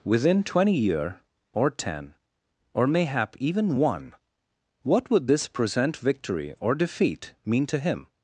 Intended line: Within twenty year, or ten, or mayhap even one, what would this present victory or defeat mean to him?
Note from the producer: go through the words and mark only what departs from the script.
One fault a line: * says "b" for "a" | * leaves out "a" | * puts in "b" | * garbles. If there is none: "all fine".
all fine